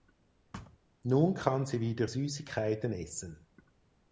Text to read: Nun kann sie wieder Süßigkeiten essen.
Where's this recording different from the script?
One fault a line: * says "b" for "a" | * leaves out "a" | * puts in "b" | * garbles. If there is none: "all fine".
all fine